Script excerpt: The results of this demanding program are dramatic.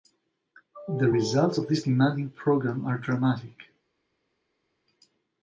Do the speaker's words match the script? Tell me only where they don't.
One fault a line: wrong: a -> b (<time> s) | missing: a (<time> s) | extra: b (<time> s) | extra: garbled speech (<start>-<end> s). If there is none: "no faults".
no faults